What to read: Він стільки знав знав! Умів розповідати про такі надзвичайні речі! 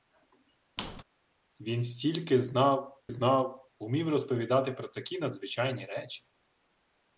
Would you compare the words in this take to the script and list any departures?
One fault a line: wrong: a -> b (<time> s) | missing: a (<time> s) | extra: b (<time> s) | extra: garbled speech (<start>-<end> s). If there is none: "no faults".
no faults